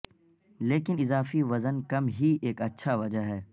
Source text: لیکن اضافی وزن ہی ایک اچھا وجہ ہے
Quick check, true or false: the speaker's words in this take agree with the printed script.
false